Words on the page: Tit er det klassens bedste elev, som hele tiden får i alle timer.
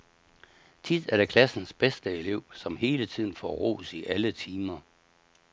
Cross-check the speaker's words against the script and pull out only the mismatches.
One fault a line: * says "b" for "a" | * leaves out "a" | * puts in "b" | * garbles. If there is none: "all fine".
* puts in "ros"